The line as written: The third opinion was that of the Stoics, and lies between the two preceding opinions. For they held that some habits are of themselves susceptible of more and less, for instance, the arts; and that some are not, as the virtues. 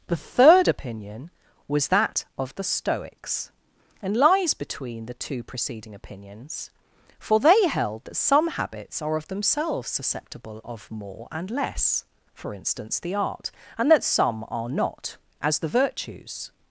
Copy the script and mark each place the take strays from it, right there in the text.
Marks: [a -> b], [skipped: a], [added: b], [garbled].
The third opinion was that of the Stoics, and lies between the two preceding opinions. For they held that some habits are of themselves susceptible of more and less, for instance, the [arts; -> art] and that some are not, as the virtues.